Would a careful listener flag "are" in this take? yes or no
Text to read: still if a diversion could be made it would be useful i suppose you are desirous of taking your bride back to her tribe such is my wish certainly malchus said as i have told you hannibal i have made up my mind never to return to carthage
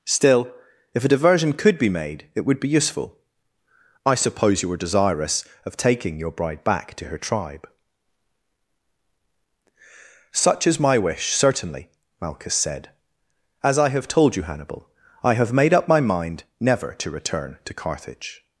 yes